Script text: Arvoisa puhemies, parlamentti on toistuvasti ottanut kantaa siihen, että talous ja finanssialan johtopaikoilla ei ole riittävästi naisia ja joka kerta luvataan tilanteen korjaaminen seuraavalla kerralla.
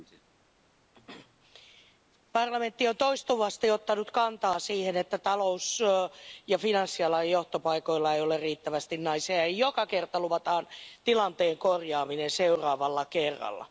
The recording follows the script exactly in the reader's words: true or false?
true